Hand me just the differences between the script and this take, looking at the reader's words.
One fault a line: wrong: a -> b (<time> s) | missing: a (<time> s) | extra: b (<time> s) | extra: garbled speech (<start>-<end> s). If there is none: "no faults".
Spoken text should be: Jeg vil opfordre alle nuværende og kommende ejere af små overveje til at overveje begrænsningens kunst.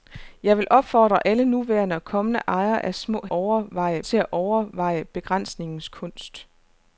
no faults